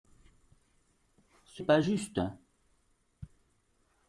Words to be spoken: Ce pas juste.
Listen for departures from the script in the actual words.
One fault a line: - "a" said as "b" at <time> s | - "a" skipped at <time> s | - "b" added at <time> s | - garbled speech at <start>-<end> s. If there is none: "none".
none